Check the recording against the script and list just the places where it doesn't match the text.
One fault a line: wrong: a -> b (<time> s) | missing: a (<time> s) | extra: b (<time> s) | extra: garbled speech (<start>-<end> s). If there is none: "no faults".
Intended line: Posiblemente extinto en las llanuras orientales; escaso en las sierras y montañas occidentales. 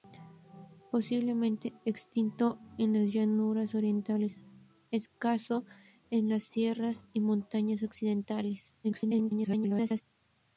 extra: garbled speech (8.8-10.0 s)